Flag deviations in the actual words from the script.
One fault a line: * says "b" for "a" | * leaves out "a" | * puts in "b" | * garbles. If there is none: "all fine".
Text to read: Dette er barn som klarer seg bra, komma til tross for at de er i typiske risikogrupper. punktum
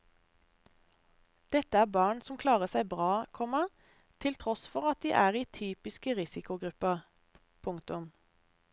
all fine